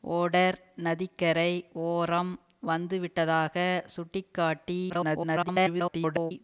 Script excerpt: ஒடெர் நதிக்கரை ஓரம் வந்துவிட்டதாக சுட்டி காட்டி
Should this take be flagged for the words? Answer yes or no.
yes